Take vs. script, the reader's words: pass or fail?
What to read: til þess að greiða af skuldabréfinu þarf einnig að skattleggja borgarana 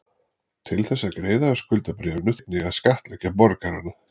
fail